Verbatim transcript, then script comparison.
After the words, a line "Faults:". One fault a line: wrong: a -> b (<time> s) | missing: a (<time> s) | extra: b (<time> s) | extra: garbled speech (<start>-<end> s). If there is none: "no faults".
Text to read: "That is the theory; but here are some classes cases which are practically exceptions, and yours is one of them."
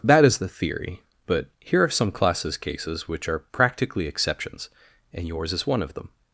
"That is the theory; but here are some classes cases which are practically exceptions, and yours is one of them."
Faults:
no faults